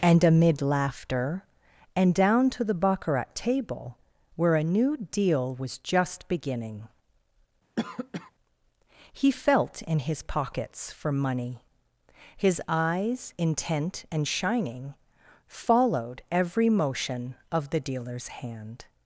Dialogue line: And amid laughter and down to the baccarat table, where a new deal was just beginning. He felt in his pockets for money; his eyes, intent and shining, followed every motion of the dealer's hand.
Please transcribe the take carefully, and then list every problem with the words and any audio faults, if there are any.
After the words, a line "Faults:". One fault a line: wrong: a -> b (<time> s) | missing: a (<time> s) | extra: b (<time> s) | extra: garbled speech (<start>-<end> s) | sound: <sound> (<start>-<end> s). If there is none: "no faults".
And amid laughter and down to the baccarat table, where a new deal was just beginning. He felt in his pockets for money; his eyes, intent and shining, followed every motion of the dealer's hand.
Faults:
sound: cough (7.8-8.3 s)